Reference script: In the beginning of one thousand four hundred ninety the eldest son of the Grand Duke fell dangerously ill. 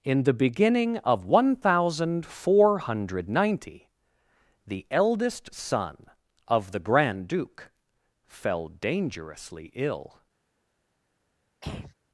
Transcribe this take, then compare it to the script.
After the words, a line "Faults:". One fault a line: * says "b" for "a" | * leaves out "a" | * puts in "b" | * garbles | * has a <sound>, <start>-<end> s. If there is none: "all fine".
In the beginning of one thousand four hundred ninety the eldest son of the Grand Duke fell dangerously ill.
Faults:
* has a throat clearing, 11.6-11.9 s